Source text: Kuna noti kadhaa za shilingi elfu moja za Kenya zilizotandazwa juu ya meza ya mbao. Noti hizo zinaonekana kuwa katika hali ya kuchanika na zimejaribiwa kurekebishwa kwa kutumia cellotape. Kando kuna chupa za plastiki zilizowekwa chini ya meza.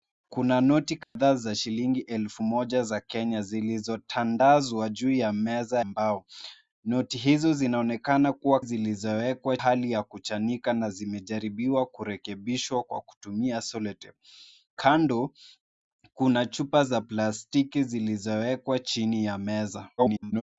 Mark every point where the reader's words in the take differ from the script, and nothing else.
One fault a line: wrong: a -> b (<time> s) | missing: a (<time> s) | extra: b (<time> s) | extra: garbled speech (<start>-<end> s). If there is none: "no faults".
missing: ya (5.8 s)
wrong: katika -> zilizowekwa (8.6 s)
extra: garbled speech (20.0-20.4 s)